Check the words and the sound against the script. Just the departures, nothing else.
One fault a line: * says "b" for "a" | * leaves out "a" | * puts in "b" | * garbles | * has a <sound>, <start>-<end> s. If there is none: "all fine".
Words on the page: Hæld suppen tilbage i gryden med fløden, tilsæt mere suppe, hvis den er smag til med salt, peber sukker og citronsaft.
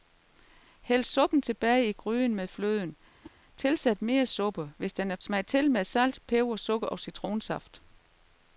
* has a whoosh, 3.2-3.4 s